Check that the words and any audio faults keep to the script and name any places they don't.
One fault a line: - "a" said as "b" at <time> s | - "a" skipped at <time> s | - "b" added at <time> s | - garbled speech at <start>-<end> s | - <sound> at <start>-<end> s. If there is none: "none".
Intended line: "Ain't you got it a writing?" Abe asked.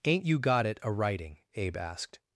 none